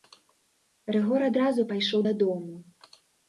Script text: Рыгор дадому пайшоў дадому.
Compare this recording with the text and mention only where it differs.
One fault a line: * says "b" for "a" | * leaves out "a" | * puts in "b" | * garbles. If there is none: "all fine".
* says "адразу" for "дадому"